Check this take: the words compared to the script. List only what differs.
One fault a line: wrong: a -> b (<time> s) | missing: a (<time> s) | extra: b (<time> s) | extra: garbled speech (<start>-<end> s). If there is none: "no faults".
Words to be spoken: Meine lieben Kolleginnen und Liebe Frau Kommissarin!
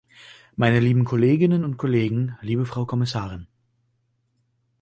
extra: Kollegen (1.8 s)